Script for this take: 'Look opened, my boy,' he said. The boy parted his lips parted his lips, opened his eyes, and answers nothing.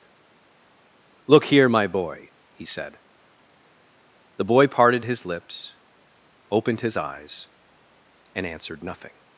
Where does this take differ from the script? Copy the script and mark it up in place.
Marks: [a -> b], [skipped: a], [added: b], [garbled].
'Look [opened, -> here] my boy,' he said. The boy parted his lips [skipped: parted his lips,] opened his eyes, and [answers -> answered] nothing.